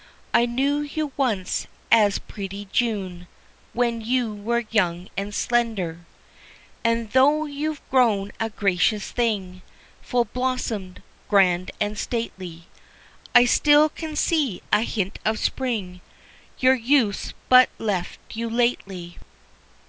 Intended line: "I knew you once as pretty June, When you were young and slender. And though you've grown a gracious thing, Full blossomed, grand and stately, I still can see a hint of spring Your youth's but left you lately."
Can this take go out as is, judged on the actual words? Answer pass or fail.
pass